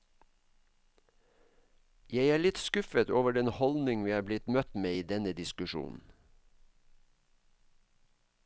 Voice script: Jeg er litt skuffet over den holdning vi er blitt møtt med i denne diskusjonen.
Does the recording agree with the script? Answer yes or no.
yes